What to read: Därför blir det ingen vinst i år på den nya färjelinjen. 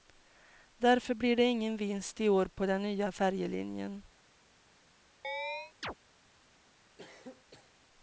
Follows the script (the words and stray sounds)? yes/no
no